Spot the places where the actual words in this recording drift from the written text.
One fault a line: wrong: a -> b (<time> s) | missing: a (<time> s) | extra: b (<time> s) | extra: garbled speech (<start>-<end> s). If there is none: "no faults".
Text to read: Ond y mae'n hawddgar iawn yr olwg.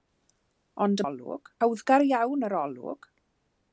wrong: mae'n -> olwg (1.0 s)